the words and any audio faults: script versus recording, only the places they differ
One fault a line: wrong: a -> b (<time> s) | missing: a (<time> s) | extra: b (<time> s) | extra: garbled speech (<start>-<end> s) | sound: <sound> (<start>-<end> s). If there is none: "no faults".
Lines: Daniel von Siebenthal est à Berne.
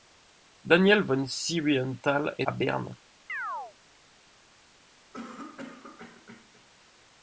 sound: chirp (3.3-3.7 s)
sound: cough (5.1-6.6 s)